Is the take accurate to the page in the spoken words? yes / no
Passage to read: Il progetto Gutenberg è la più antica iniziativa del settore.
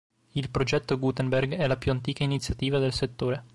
yes